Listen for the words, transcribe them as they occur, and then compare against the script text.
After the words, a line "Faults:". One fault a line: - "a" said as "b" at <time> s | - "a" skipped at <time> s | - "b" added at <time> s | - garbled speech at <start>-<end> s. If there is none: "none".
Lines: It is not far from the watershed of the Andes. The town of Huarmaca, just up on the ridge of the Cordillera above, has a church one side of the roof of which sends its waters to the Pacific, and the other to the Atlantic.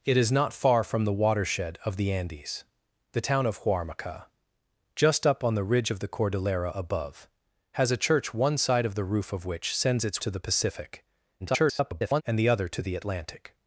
It is not far from the watershed of the Andes. The town of Huarmaca, just up on the ridge of the Cordillera above, has a church one side of the roof of which sends its to the Pacific, [garbled] and the other to the Atlantic.
Faults:
- "waters" skipped at 10.2 s
- garbled speech at 11.4-12.2 s